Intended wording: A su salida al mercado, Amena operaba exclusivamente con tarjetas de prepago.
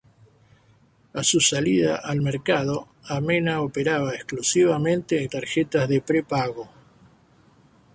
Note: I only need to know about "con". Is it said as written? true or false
false